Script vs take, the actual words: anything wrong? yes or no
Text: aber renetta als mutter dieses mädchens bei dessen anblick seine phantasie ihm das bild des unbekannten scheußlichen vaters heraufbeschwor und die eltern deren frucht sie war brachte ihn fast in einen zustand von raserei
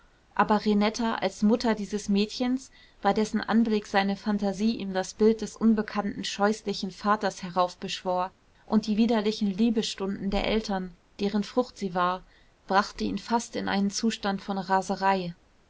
yes